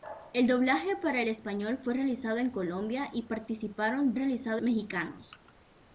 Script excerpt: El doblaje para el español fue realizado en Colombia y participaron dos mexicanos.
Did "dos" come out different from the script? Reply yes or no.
yes